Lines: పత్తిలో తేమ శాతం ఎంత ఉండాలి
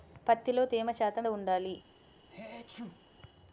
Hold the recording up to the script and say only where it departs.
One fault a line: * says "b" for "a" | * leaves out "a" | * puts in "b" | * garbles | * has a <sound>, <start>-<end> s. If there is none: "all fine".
* leaves out "ఎంత"
* has a sneeze, 2.3-3.1 s